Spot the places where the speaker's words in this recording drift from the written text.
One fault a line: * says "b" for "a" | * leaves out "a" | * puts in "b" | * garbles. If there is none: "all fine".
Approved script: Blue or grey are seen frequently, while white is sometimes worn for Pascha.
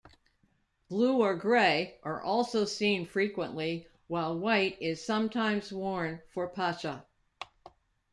* puts in "also"